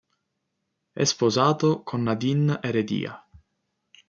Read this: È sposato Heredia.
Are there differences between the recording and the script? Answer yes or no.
yes